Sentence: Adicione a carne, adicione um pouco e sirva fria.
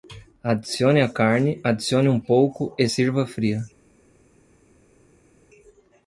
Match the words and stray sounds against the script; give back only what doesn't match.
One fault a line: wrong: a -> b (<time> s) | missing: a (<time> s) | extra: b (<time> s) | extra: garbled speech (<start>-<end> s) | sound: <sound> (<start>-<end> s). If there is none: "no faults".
no faults